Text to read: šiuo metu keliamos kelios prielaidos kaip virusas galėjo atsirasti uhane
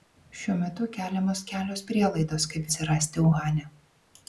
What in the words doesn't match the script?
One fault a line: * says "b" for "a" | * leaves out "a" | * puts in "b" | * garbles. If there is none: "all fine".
* leaves out "virusas galėjo"